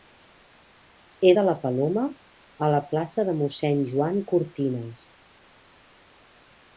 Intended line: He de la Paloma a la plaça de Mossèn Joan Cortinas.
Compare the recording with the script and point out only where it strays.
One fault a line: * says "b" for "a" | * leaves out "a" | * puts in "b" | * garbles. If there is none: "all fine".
all fine